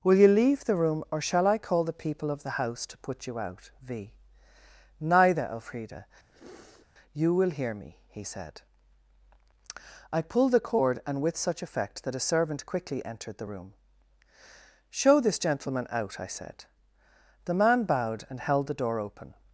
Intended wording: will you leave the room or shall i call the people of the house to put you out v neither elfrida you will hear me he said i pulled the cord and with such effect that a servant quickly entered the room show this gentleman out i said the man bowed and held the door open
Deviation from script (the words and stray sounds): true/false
true